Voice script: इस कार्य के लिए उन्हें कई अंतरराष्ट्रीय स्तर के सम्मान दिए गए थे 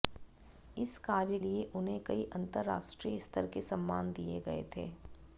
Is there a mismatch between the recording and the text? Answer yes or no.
yes